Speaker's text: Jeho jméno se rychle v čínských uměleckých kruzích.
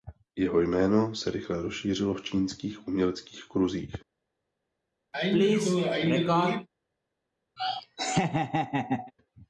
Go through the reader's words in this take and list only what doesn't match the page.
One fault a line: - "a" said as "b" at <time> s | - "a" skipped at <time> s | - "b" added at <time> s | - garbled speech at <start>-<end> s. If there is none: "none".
- "rozšířilo" added at 1.6 s